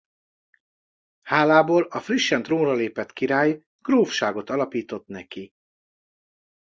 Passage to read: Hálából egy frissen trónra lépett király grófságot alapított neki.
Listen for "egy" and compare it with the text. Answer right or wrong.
wrong